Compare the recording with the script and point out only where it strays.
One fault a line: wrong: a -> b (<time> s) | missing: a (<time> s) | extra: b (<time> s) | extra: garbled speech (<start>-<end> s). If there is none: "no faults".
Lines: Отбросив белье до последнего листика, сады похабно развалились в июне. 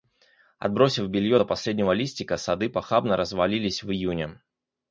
no faults